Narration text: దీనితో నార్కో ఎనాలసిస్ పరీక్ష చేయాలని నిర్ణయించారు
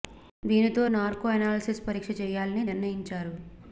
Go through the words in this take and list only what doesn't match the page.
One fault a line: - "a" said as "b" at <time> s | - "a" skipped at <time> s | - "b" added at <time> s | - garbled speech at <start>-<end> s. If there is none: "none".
none